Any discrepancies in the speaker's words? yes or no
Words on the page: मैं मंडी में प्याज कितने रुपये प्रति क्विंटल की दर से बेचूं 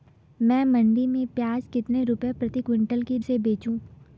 yes